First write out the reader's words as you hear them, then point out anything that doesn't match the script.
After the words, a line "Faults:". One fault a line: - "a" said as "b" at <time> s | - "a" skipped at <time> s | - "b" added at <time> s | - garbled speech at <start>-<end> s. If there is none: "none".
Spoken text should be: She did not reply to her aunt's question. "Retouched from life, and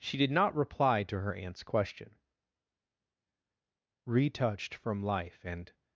She did not reply to her aunt's question. "Retouched from life, and
Faults:
none